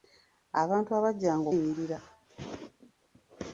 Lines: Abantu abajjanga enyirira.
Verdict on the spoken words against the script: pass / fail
pass